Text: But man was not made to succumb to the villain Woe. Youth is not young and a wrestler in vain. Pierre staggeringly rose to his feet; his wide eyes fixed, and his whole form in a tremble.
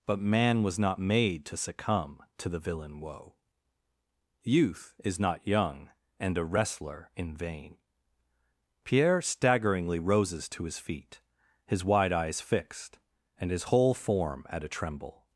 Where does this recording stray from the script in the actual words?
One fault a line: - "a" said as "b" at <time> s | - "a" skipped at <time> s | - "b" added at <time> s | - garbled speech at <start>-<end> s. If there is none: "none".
- "rose" said as "roses" at 10.0 s
- "in" said as "at" at 14.5 s